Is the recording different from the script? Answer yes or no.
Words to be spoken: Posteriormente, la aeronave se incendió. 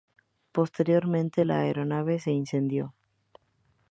no